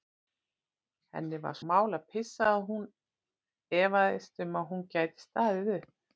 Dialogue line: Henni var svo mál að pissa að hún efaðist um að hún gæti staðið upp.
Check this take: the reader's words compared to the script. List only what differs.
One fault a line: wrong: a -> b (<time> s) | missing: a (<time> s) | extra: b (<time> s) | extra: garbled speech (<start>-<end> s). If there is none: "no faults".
missing: svo (1.6 s)